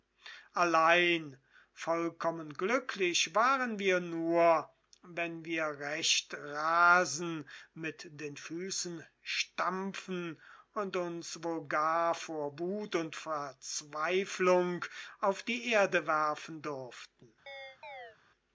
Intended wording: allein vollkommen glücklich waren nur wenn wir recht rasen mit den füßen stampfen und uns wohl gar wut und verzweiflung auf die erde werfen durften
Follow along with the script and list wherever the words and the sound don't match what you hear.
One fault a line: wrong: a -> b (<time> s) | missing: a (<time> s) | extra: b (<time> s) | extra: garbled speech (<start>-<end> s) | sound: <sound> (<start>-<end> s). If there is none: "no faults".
extra: wir (3.8 s)
extra: vor (12.2 s)
sound: chirp (17.5-18.2 s)